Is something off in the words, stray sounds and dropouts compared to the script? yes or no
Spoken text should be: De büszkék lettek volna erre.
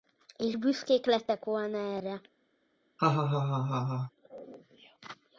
yes